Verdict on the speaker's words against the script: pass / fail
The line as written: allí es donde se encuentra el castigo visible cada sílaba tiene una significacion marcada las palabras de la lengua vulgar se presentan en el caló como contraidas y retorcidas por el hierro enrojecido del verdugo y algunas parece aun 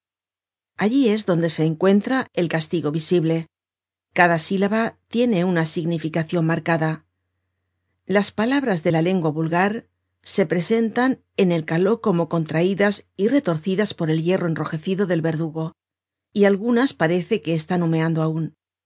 fail